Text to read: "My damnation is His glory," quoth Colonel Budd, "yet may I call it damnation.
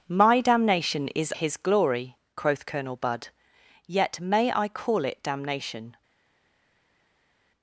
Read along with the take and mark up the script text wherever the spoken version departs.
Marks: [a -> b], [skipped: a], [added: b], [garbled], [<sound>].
"My damnation is His glory," quoth Colonel Budd, "yet may I call it damnation.